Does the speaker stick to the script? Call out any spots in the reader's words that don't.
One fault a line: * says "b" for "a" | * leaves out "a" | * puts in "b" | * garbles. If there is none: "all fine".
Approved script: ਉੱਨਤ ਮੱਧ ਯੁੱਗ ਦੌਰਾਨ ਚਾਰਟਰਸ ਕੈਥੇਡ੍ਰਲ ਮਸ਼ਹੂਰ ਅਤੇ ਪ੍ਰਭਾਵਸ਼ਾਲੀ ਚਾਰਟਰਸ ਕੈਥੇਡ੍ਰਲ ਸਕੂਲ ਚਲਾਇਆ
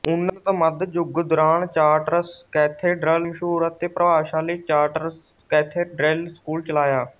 all fine